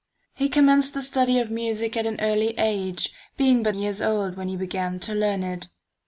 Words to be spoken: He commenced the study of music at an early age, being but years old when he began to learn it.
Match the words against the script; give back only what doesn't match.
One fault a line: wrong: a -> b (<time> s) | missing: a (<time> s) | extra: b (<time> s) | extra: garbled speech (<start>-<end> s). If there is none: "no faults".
no faults